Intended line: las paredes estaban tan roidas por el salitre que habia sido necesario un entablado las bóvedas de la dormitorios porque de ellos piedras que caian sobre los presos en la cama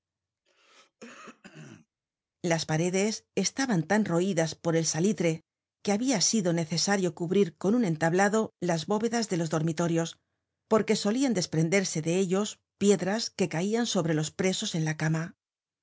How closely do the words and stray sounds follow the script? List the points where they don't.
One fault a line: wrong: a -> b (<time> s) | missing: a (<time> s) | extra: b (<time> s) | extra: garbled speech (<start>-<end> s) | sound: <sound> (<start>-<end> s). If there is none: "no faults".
sound: throat clearing (0.4-1.9 s)
extra: cubrir con (7.1 s)
wrong: la -> los (9.4 s)
extra: solian desprenderse (11.0 s)